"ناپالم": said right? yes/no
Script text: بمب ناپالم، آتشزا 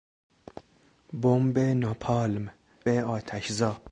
yes